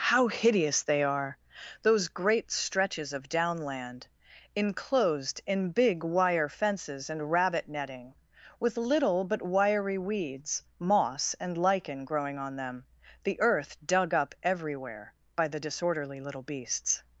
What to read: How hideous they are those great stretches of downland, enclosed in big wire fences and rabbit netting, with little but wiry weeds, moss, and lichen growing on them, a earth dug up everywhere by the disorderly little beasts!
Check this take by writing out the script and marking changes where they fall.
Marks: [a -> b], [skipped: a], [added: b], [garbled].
How hideous they are those great stretches of downland, enclosed in big wire fences and rabbit netting, with little but wiry weeds, moss, and lichen growing on them, [a -> the] earth dug up everywhere by the disorderly little beasts!